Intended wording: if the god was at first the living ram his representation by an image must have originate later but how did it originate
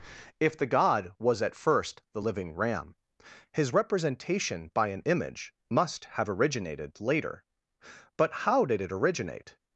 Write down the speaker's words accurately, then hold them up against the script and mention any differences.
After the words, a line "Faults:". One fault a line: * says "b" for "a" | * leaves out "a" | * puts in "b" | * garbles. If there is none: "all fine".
if the god was at first the living ram his representation by an image must have originated later but how did it originate
Faults:
* says "originated" for "originate"